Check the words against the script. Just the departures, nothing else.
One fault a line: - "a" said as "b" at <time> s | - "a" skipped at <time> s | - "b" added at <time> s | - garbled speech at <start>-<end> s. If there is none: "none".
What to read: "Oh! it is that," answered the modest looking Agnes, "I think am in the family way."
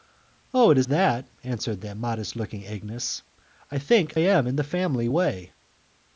none